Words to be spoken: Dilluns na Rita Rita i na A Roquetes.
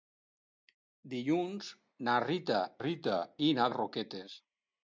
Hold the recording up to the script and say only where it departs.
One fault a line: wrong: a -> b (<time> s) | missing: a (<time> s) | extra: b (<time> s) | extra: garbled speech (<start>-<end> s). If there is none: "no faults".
no faults